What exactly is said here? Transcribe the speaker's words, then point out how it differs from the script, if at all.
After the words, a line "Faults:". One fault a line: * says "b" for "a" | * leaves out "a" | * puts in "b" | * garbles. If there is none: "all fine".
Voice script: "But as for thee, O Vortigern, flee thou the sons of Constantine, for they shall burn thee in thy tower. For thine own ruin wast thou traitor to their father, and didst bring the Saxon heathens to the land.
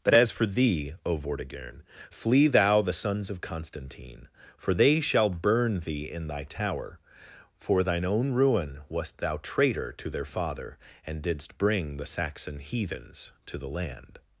"But as for thee, O Vortigern, flee thou the sons of Constantine, for they shall burn thee in thy tower. For thine own ruin wast thou traitor to their father, and didst bring the Saxon heathens to the land.
Faults:
all fine